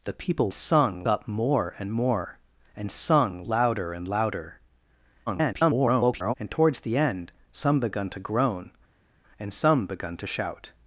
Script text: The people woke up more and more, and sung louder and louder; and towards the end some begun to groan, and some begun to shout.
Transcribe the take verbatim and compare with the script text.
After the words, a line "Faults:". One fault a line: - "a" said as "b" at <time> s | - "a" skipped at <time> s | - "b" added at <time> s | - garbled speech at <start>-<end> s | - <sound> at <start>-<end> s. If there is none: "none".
The people sung up more and more, and sung louder and louder; [garbled] and towards the end some begun to groan, and some begun to shout.
Faults:
- "woke" said as "sung" at 0.5 s
- garbled speech at 5.3-6.3 s